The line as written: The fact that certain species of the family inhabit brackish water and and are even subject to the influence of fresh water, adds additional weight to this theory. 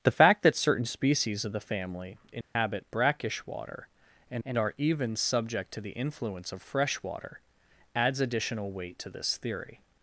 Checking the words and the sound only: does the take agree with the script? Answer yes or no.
no